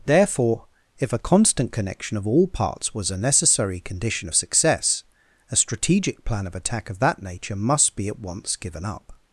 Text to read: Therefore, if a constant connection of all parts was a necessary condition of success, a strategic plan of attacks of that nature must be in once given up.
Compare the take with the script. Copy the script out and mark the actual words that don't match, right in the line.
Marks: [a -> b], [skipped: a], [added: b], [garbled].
Therefore, if a constant connection of all parts was a necessary condition of success, a strategic plan of [attacks -> attack] of that nature must be [in -> at] once given up.